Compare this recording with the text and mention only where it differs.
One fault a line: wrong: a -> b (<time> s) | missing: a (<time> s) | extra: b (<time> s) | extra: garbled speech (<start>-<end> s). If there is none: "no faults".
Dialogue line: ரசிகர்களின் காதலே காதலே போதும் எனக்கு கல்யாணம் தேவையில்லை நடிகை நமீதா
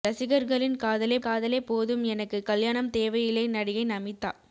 no faults